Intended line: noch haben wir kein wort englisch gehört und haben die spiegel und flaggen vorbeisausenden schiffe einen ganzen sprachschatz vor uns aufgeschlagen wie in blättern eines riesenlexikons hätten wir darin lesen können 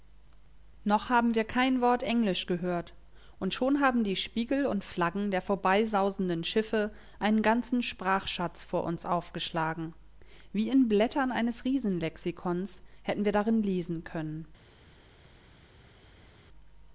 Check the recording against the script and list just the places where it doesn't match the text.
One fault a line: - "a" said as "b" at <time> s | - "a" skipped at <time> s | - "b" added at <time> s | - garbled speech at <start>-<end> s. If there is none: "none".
- "schon" added at 3.5 s
- "der" added at 5.3 s